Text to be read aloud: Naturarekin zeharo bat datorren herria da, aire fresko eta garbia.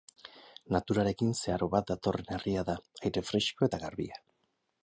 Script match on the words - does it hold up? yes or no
yes